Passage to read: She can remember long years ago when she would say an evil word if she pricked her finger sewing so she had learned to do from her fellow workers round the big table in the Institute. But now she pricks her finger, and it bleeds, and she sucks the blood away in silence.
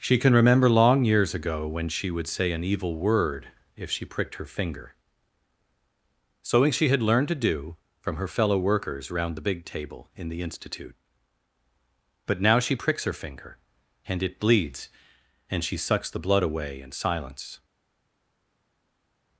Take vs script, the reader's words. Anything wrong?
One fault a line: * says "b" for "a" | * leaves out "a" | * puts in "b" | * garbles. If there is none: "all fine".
* leaves out "so"